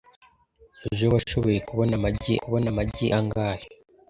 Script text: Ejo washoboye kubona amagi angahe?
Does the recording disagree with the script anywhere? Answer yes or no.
yes